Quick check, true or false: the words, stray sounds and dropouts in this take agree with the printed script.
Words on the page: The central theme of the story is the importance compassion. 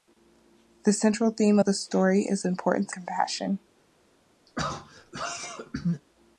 false